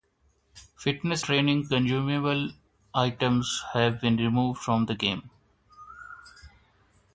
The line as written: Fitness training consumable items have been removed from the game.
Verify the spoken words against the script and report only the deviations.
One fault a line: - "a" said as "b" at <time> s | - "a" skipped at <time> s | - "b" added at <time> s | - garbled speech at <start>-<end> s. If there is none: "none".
none